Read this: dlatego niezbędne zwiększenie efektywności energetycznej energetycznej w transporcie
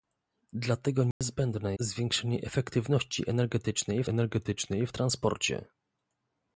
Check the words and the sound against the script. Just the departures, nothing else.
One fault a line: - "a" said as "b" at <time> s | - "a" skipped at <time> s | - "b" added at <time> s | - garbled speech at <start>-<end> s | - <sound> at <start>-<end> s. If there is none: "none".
- dropout at 1.1-1.2 s